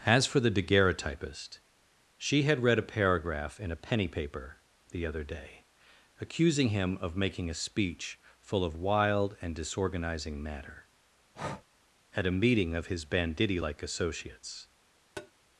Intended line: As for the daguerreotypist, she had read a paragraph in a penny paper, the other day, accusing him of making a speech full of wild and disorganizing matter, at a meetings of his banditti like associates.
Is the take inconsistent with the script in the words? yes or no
yes